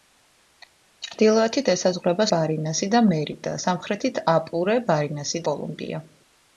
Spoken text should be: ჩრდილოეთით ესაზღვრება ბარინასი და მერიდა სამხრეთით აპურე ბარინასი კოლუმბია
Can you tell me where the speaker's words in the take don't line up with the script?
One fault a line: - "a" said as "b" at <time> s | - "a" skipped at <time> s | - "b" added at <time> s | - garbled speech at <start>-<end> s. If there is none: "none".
none